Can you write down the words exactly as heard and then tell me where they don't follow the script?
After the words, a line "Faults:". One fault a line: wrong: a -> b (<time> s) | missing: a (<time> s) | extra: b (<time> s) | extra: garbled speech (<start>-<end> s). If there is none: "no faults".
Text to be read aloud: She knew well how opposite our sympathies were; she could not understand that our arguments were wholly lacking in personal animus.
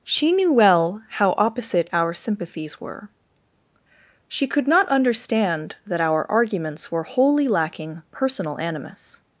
She knew well how opposite our sympathies were; she could not understand that our arguments were wholly lacking personal animus.
Faults:
missing: in (8.0 s)